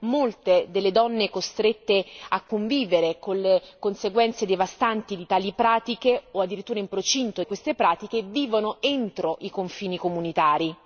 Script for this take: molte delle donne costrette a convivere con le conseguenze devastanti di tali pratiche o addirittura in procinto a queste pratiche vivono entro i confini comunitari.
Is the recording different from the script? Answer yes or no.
no